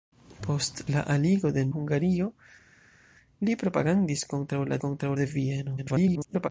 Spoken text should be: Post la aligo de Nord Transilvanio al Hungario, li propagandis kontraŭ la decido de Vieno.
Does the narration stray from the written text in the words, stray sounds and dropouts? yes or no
yes